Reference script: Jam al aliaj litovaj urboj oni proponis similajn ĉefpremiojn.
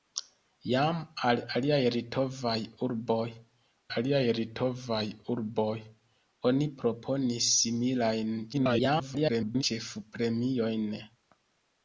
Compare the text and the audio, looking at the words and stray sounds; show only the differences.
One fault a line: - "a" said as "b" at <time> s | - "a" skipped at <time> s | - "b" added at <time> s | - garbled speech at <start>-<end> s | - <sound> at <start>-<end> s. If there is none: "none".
- "aliaj litovaj urboj" added at 4.0 s
- garbled speech at 8.5-9.6 s